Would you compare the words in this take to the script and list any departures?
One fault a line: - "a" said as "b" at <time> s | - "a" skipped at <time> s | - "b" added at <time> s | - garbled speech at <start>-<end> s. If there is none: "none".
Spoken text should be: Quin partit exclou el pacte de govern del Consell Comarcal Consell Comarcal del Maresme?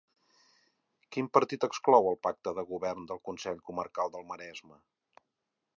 - "Consell Comarcal" skipped at 4.2 s